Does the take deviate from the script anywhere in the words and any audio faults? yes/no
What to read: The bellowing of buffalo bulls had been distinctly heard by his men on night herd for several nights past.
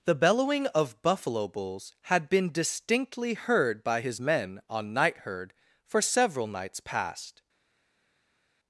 no